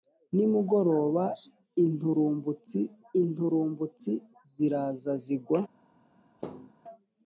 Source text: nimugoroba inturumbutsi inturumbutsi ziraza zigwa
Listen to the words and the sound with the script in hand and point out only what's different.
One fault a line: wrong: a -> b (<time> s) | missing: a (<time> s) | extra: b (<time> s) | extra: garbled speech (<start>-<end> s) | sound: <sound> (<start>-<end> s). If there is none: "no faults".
sound: thud (6.4-6.7 s)